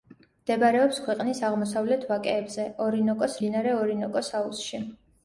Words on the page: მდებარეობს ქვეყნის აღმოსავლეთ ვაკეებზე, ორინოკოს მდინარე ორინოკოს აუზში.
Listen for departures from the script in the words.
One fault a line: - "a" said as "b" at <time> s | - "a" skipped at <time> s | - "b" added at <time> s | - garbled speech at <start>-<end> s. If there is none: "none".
none